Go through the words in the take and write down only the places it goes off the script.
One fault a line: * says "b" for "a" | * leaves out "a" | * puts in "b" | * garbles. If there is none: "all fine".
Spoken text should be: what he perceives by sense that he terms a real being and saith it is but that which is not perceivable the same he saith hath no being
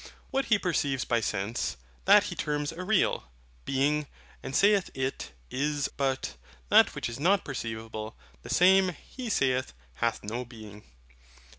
all fine